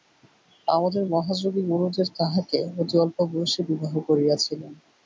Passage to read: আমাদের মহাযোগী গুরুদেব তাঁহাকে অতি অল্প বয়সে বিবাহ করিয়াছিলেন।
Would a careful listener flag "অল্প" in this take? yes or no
no